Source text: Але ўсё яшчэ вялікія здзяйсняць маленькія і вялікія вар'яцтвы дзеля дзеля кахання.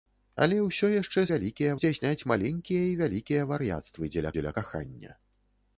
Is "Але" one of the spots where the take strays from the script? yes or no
no